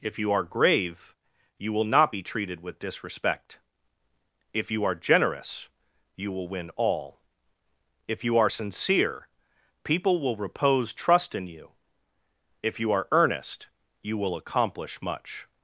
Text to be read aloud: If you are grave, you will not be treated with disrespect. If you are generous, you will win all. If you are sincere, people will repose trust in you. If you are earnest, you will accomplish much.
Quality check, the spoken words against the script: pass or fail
pass